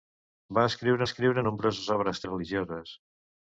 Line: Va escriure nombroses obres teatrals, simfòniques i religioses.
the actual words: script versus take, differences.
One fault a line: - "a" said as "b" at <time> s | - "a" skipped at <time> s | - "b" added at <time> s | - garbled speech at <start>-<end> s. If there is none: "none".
- "escriure" added at 1.1 s
- "teatrals simfòniques" skipped at 2.2 s